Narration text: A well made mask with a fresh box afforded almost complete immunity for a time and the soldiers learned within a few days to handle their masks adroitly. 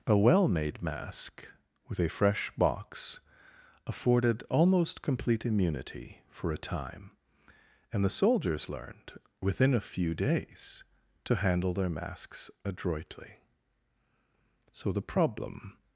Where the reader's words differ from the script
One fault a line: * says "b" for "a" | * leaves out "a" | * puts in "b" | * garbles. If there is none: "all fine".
* puts in "So the problem"